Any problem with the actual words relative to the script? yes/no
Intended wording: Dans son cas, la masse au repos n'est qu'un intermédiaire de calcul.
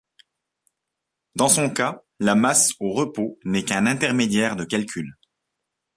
no